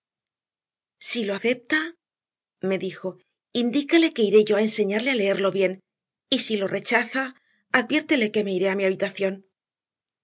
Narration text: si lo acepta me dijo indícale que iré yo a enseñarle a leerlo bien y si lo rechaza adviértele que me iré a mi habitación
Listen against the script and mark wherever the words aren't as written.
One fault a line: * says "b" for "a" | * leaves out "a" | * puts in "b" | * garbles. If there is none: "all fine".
all fine